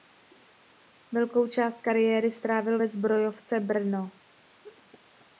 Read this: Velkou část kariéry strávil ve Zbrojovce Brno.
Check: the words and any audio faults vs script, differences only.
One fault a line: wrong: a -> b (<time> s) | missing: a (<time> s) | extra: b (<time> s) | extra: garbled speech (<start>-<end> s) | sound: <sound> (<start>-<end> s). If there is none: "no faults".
sound: laugh (4.6-4.8 s)